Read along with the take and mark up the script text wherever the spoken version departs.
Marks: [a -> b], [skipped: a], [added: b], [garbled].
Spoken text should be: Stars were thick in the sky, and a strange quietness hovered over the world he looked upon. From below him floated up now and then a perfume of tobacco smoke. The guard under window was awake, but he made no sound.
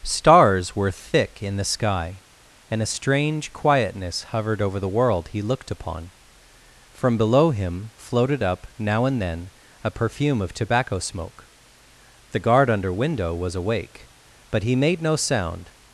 Stars were thick in the sky, and a strange quietness hovered over the world he looked upon. From below him floated up now and then a perfume of tobacco smoke. The guard under window was awake, but he made no sound.